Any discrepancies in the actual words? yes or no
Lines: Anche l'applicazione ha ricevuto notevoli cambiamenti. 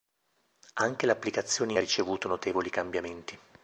no